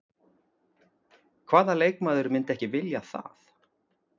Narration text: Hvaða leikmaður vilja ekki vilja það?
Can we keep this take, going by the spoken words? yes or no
no